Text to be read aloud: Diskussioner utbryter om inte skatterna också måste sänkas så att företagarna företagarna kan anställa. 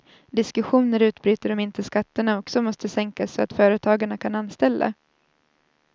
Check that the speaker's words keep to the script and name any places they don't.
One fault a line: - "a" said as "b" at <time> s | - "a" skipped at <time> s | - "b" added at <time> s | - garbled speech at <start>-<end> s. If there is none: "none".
- "företagarna" skipped at 4.2 s